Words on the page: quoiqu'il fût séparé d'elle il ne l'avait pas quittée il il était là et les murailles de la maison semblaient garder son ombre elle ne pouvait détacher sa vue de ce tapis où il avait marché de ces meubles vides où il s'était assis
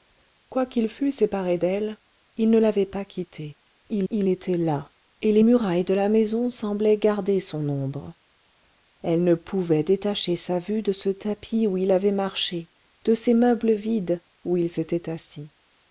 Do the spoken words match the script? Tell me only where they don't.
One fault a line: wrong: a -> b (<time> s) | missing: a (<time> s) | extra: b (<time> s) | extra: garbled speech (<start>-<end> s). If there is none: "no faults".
no faults